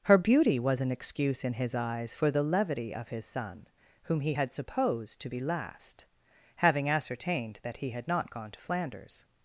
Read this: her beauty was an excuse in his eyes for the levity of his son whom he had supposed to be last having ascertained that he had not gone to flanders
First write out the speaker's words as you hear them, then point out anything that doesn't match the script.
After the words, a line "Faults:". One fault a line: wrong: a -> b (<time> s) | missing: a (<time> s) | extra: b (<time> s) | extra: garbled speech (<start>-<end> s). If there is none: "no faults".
her beauty was an excuse in his eyes for the levity of his son whom he had supposed to be last having ascertained that he had not gone to flanders
Faults:
no faults